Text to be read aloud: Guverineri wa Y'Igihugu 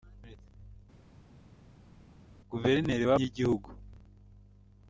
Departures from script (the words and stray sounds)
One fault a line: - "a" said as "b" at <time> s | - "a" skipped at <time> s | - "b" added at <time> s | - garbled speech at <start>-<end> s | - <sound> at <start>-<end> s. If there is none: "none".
none